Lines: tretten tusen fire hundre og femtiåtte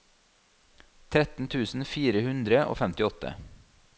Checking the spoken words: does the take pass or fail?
pass